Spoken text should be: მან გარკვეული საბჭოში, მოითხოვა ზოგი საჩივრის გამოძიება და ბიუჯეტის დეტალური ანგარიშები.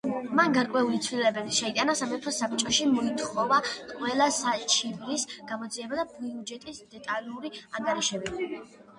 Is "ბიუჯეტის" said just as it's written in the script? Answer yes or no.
yes